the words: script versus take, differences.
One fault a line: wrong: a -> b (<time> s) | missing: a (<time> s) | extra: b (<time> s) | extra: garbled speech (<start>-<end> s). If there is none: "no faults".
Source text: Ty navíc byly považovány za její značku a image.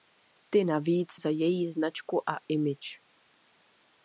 missing: byly považovány (1.1 s)